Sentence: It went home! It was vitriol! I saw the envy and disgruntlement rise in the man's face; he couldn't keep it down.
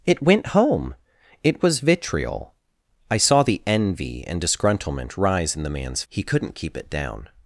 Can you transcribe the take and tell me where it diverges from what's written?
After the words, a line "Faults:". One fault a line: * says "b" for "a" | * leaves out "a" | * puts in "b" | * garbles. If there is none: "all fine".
It went home! It was vitriol! I saw the envy and disgruntlement rise in the man's; he couldn't keep it down.
Faults:
* leaves out "face"